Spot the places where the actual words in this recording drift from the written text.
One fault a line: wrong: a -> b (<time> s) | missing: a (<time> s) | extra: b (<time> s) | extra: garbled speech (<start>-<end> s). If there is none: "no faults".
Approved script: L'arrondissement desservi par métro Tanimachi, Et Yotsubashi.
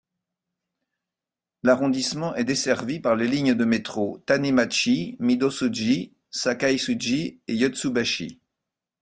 extra: est (2.3 s)
extra: les lignes de (3.2 s)
extra: Midōsuji Sakaisuji (5.2 s)